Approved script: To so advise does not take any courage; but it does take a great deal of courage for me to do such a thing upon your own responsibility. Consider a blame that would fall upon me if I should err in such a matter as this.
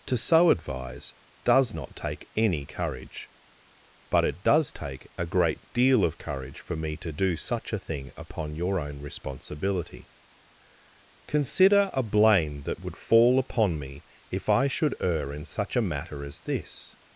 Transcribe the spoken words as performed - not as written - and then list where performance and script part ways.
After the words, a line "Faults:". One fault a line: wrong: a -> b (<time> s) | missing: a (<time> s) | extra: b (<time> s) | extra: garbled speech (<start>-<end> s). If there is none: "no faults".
To so advise does not take any courage; but it does take a great deal of courage for me to do such a thing upon your own responsibility. Consider a blame that would fall upon me if I should err in such a matter as this.
Faults:
no faults